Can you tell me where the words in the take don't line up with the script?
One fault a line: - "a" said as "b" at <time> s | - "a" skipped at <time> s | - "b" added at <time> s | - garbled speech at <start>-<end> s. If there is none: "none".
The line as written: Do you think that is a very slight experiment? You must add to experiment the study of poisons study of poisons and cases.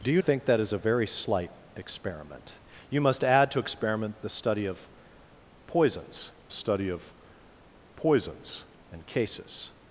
none